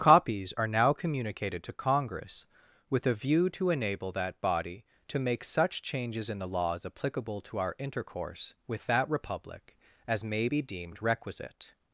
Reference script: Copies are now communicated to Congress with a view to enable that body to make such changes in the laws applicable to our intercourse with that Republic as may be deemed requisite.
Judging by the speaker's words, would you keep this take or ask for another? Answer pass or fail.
pass